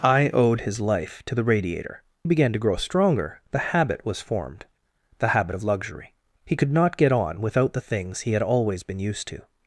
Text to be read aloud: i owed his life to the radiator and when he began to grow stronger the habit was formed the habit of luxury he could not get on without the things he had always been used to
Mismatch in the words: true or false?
true